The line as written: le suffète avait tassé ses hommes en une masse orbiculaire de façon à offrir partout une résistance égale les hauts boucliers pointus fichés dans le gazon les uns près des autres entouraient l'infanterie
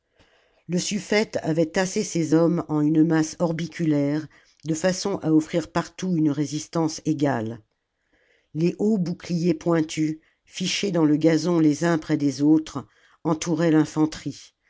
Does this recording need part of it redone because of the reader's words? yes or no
no